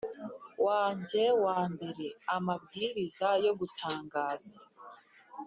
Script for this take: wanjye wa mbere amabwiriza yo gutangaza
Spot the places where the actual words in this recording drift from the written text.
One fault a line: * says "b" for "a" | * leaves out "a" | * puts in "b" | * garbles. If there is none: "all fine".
all fine